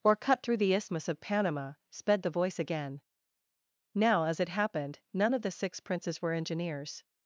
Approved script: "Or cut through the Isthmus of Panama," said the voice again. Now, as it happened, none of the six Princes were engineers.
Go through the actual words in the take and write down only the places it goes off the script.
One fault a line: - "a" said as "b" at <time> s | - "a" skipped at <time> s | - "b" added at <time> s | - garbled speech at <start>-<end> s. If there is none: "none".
- "said" said as "sped" at 1.9 s